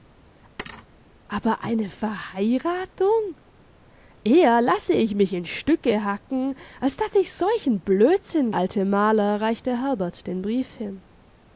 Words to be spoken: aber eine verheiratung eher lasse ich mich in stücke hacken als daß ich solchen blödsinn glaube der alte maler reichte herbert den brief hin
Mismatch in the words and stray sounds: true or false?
true